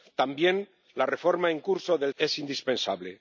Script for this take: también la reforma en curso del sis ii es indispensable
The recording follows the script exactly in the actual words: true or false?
false